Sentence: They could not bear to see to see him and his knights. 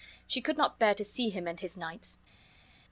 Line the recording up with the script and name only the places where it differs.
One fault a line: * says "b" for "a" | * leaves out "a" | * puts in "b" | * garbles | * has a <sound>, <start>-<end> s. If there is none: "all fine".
* says "She" for "They"
* leaves out "to see"